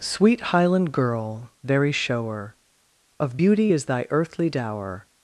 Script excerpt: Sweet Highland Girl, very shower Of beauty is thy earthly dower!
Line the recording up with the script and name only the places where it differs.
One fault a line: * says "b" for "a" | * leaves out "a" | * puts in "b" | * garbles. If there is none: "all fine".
all fine